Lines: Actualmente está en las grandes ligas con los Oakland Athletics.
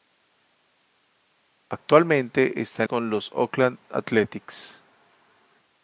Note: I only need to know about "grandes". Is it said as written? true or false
false